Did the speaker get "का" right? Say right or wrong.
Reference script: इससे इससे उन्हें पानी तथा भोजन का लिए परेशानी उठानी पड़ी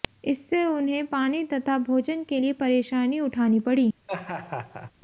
wrong